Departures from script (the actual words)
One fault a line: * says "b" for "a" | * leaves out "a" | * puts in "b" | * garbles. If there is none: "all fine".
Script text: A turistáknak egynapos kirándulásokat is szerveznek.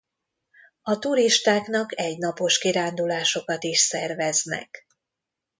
all fine